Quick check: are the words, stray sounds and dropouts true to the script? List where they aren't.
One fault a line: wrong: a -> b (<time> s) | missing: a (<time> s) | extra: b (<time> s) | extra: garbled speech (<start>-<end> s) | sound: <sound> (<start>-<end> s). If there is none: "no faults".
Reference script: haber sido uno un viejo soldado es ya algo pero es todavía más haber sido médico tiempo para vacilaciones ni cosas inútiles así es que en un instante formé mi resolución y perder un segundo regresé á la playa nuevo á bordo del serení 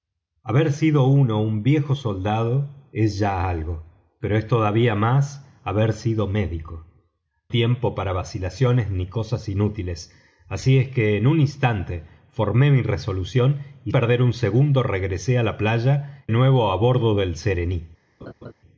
sound: laugh (18.2-18.5 s)